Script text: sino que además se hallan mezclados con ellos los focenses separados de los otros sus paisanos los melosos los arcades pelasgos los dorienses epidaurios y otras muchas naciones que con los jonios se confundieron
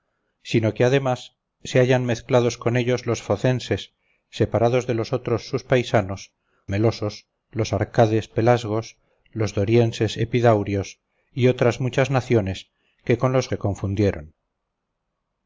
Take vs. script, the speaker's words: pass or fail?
fail